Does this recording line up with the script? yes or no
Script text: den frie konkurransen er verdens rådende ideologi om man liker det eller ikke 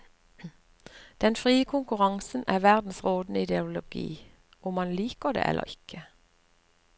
yes